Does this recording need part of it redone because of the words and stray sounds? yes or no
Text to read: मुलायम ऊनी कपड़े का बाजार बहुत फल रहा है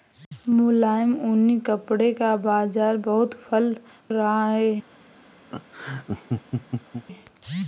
yes